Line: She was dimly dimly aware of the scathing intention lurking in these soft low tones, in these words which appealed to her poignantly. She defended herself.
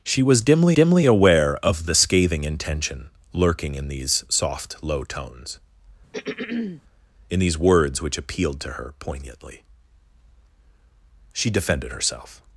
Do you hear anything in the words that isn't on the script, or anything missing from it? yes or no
no